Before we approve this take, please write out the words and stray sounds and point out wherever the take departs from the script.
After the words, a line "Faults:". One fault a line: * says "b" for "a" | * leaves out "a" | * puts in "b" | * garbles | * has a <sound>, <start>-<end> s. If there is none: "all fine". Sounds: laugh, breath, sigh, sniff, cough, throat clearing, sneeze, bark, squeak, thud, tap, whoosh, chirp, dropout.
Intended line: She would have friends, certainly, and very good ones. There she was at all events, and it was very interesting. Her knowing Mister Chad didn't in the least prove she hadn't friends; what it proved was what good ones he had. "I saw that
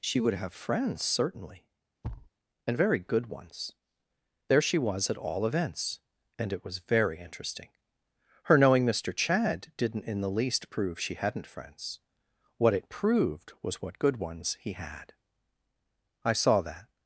She would have friends, certainly, and very good ones. There she was at all events, and it was very interesting. Her knowing Mister Chad didn't in the least prove she hadn't friends; what it proved was what good ones he had. "I saw that
Faults:
* has a thud, 2.0-2.3 s